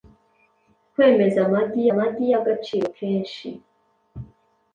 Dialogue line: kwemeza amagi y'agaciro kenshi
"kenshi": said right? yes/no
yes